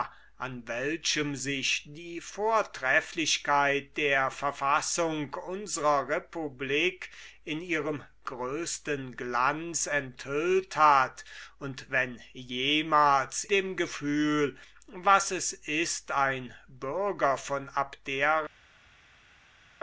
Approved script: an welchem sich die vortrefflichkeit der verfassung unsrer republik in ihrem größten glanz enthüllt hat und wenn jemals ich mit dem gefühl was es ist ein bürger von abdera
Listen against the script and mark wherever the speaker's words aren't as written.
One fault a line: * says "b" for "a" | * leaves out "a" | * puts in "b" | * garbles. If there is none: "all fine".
* leaves out "ich mit"